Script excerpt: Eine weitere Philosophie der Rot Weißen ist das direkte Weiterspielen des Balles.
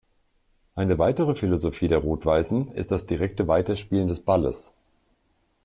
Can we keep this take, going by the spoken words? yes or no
yes